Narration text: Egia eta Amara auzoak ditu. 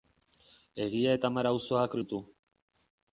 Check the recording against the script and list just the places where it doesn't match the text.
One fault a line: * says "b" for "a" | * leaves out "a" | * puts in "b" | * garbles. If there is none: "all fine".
all fine